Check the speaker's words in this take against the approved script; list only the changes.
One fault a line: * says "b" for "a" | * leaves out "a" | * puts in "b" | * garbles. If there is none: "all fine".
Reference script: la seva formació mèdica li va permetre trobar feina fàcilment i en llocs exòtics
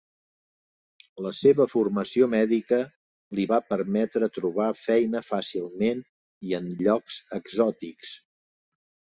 all fine